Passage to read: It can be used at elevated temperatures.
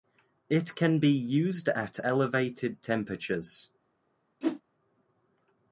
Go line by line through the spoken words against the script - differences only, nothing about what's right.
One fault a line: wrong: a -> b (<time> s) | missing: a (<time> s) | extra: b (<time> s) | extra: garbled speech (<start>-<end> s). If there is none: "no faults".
no faults